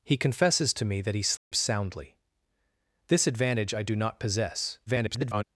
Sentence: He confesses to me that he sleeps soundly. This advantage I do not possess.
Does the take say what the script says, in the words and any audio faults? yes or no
no